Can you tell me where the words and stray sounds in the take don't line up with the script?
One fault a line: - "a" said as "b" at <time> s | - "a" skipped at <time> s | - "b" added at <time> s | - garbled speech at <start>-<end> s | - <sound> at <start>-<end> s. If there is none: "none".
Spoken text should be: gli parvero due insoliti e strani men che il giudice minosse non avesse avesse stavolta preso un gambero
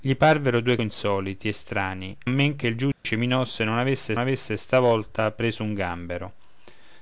- dropout at 2.9-3.0 s